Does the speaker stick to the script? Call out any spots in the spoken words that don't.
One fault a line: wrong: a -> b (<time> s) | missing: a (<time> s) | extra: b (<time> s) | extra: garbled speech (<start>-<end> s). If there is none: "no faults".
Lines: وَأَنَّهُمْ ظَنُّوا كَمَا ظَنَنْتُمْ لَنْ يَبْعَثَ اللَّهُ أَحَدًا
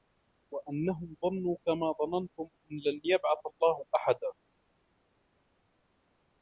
extra: أَنْ (2.4 s)